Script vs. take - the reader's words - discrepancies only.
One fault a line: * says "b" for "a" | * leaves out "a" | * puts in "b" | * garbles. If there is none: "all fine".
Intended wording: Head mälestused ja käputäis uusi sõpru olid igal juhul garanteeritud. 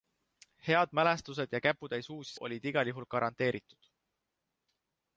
* leaves out "sõpru"